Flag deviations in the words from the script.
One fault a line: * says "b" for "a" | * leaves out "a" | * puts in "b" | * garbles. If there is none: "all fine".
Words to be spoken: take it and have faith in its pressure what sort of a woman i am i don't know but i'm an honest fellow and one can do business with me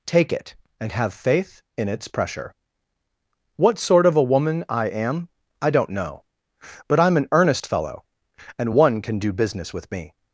* says "earnest" for "honest"